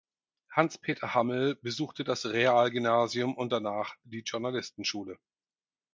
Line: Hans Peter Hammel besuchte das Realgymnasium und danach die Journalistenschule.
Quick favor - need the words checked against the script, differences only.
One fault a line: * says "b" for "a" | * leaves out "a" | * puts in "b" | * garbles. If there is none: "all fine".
all fine